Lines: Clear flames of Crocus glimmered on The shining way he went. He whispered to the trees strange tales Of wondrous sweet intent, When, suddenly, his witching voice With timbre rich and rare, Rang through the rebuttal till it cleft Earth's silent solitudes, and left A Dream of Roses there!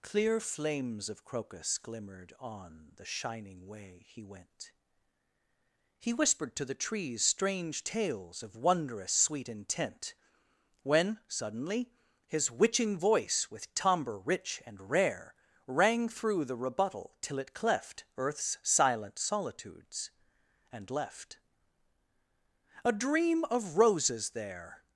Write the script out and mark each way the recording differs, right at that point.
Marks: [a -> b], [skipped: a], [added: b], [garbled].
Clear flames of Crocus glimmered on The shining way he went. He whispered to the trees strange tales Of wondrous sweet intent, When, suddenly, his witching voice With timbre rich and rare, Rang through the rebuttal till it cleft Earth's silent solitudes, and left A Dream of Roses there!